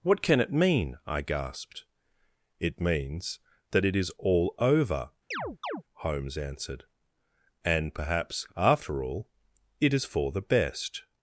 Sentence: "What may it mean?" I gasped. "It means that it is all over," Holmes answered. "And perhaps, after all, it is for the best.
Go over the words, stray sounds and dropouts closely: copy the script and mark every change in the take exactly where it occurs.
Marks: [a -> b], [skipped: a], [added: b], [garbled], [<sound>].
"What [may -> can] it mean?" I gasped. "It means that it is all over," [chirp] Holmes answered. "And perhaps, after all, it is for the best.